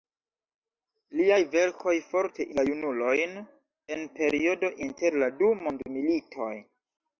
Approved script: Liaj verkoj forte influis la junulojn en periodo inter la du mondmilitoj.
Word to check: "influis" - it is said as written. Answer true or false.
false